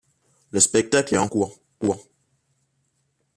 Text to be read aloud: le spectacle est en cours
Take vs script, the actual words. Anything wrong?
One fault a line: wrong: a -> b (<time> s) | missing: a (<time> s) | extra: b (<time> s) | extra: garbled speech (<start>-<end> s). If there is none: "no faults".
no faults